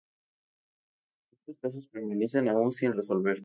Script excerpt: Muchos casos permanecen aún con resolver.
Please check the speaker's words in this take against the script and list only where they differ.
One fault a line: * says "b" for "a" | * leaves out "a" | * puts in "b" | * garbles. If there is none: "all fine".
* says "sin" for "con"